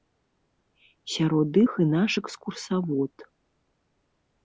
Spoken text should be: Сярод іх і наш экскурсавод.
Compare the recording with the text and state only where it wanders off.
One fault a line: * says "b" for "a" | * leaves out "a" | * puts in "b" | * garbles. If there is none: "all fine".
all fine